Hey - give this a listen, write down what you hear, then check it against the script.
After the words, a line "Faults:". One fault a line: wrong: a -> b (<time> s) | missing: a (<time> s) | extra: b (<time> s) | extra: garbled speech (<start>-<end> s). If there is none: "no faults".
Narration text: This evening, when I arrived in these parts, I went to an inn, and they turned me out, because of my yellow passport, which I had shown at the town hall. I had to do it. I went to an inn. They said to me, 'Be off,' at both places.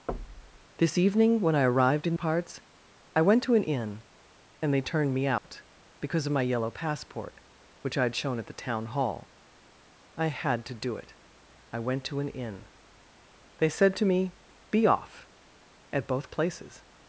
This evening, when I arrived in parts, I went to an inn, and they turned me out, because of my yellow passport, which I had shown at the town hall. I had to do it. I went to an inn. They said to me, 'Be off,' at both places.
Faults:
missing: these (2.1 s)